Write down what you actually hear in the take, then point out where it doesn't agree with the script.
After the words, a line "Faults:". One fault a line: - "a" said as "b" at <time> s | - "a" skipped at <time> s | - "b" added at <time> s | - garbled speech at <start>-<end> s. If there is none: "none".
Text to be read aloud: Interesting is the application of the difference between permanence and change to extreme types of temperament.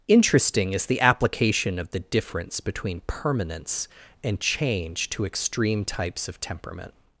Interesting is the application of the difference between permanence and change to extreme types of temperament.
Faults:
none